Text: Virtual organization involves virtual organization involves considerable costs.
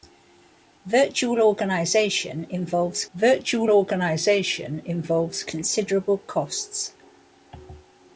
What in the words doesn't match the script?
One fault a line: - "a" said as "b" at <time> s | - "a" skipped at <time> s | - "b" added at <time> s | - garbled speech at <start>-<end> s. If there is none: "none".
none